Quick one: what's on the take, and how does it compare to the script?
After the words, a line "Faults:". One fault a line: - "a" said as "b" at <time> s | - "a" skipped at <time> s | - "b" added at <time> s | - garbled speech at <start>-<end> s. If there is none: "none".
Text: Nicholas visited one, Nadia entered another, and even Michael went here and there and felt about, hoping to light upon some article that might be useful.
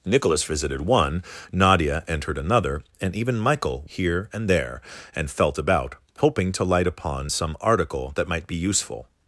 Nicholas visited one, Nadia entered another, and even Michael here and there and felt about, hoping to light upon some article that might be useful.
Faults:
- "went" skipped at 3.8 s